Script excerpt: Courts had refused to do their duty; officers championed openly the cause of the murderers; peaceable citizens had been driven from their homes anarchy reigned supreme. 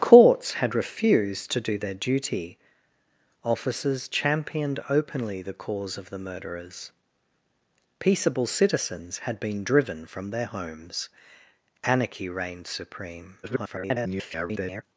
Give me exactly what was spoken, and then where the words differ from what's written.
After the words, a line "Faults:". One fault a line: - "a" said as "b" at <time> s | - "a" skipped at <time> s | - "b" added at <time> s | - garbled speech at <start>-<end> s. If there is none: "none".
Courts had refused to do their duty; officers championed openly the cause of the murderers; peaceable citizens had been driven from their homes anarchy reigned supreme. [garbled]
Faults:
- garbled speech at 13.4-14.8 s